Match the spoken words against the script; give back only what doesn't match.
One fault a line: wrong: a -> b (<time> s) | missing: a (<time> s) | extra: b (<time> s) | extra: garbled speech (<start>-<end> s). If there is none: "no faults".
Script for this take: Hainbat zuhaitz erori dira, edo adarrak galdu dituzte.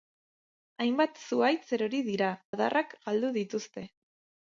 missing: edo (2.3 s)